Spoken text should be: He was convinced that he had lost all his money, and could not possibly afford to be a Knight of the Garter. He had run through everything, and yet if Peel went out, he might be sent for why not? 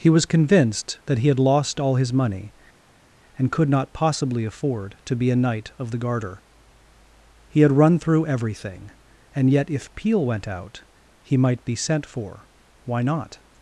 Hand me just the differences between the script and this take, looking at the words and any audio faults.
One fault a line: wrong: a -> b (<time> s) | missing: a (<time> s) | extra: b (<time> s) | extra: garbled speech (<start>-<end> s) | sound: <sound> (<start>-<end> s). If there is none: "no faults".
no faults